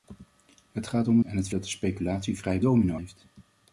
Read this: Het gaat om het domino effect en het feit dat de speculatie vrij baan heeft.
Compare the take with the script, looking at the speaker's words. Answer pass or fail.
fail